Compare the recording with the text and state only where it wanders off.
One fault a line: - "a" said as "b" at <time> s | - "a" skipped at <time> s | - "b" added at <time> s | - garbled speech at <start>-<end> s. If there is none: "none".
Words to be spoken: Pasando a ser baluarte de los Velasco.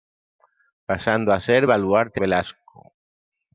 - "de los" skipped at 2.2 s